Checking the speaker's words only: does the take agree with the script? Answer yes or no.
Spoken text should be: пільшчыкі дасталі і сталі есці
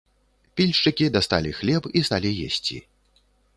no